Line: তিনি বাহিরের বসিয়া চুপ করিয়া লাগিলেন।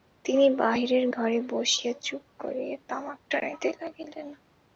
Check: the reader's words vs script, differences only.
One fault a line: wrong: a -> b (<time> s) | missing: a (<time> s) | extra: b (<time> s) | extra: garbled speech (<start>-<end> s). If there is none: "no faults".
extra: ঘরে (1.1 s)
extra: তামাক টানিতে (2.9 s)